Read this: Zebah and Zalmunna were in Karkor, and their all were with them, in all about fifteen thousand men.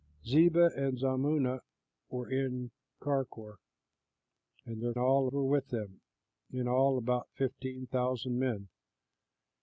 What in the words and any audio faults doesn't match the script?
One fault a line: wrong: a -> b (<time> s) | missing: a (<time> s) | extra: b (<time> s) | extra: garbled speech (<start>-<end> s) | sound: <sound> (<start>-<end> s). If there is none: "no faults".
no faults